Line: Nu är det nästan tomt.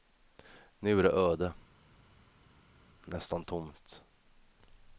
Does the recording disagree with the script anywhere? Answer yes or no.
yes